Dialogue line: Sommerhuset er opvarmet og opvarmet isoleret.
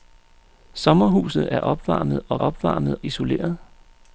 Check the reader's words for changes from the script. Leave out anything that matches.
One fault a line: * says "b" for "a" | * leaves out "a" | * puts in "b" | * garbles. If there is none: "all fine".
all fine